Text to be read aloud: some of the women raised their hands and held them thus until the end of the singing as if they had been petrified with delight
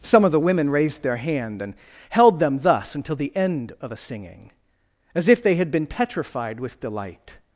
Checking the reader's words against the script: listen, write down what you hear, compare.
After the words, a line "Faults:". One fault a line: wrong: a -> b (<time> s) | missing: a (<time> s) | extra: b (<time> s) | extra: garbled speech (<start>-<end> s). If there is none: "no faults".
some of the women raised their hand and held them thus until the end of a singing as if they had been petrified with delight
Faults:
wrong: hands -> hand (1.2 s)
wrong: the -> a (3.9 s)